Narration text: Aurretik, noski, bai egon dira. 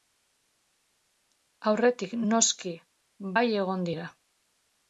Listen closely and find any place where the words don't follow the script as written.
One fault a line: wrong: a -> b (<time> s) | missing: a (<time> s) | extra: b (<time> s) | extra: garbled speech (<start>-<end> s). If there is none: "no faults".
no faults